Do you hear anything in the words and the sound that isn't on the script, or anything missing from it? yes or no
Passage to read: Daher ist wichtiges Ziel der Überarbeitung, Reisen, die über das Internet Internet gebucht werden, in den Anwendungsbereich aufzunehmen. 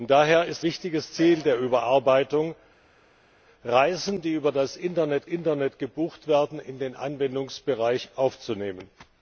no